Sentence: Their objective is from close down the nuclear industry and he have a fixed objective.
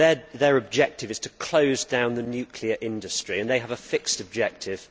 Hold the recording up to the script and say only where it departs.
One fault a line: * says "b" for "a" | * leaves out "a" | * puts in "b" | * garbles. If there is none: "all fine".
* says "to" for "from"
* says "they" for "he"